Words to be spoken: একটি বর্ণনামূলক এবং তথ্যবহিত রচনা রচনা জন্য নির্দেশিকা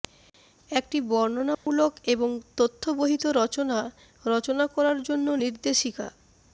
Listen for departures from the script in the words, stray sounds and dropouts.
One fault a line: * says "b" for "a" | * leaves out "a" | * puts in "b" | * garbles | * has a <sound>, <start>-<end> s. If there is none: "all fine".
* has a dropout, 1.5-1.7 s
* puts in "করার"